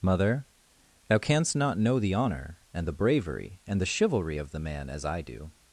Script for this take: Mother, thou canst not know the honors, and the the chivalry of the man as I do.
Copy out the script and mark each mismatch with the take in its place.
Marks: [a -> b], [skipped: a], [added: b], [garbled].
Mother, thou canst not know the [honors, -> honor] and the [added: bravery and] the chivalry of the man as I do.